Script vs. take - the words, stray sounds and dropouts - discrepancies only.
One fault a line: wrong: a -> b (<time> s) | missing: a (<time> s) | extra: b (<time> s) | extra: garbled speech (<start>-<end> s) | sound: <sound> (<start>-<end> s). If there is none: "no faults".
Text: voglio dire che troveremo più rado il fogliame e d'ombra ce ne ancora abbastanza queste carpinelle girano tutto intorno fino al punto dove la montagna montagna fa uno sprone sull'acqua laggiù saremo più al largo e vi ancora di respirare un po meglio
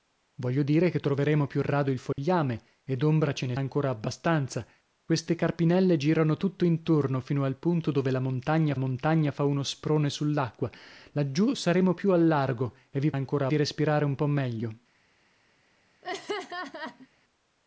sound: dropout (2.1-2.2 s)
sound: laugh (16.0-17.1 s)